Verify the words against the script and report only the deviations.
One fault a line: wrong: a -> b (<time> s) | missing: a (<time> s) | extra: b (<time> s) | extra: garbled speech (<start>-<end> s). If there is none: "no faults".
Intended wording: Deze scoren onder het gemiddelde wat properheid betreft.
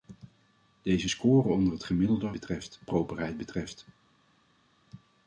wrong: wat -> betreft (2.3 s)